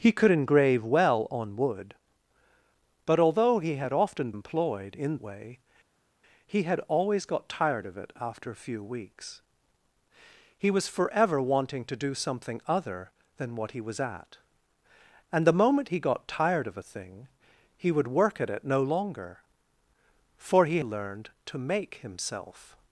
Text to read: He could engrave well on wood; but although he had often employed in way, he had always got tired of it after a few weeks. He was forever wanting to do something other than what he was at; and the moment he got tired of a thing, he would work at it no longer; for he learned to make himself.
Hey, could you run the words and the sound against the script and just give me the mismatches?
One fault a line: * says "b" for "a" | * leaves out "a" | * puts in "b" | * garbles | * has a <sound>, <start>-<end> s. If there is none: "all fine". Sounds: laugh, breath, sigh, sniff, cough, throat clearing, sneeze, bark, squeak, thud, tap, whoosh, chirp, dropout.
all fine